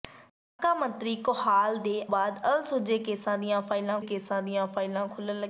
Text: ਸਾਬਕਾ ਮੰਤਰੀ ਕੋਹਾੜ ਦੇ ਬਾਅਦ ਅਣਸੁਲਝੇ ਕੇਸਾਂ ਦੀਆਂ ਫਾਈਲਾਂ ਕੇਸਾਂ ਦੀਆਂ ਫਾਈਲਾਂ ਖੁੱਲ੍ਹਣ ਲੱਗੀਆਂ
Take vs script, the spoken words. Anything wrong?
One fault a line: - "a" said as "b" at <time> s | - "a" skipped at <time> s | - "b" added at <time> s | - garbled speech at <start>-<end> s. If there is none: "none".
none